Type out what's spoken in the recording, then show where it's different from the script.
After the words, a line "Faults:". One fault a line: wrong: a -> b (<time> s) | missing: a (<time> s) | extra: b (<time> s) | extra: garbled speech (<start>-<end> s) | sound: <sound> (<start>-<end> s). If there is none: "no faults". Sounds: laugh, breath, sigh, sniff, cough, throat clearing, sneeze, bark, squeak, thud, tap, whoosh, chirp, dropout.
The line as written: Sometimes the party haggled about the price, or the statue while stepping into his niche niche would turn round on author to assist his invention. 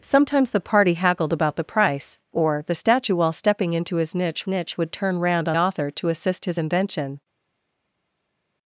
Sometimes the party haggled about the price, or the statue while stepping into his niche niche would turn round on author to assist his invention.
Faults:
no faults